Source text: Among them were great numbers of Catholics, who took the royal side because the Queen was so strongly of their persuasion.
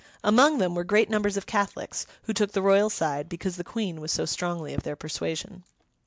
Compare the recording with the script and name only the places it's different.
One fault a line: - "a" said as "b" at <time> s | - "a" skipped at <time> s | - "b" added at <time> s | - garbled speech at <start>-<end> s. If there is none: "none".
none